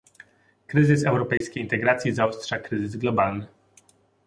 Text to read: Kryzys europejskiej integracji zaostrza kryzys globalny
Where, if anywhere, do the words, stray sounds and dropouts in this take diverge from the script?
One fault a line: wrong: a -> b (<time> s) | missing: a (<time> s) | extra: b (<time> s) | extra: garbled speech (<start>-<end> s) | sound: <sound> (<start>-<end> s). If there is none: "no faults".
sound: dropout (1.4-1.4 s)